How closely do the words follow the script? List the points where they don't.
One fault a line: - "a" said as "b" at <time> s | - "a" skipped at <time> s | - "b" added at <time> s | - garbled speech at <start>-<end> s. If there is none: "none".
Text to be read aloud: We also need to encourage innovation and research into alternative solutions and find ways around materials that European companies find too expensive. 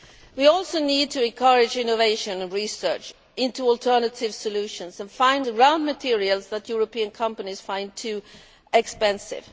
- "ways" skipped at 5.5 s